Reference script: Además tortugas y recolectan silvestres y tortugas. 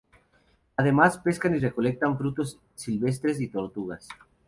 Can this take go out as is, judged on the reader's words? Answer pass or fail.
fail